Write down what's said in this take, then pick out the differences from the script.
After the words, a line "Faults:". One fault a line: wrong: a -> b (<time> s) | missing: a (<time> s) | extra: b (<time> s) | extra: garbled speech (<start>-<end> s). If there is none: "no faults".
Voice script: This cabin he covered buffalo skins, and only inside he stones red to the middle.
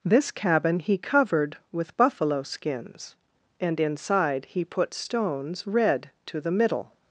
This cabin he covered with buffalo skins, and inside he put stones red to the middle.
Faults:
extra: with (1.7 s)
missing: only (3.8 s)
extra: put (4.7 s)